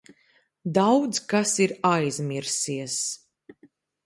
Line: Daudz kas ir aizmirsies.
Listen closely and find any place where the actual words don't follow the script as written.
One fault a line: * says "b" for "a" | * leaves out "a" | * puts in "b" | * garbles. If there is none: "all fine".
all fine